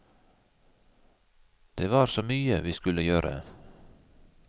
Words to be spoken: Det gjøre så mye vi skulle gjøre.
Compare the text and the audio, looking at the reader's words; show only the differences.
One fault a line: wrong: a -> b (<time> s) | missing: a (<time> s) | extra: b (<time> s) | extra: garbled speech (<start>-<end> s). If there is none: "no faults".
wrong: gjøre -> var (1.9 s)